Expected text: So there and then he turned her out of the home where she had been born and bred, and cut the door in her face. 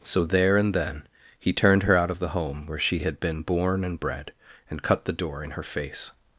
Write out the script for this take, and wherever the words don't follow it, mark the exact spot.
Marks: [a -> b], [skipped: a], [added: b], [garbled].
So there and then he turned her out of the home where she had been born and bred, and cut the door in her face.